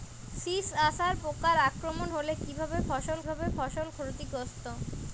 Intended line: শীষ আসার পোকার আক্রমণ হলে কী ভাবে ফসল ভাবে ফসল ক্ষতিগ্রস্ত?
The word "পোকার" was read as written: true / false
true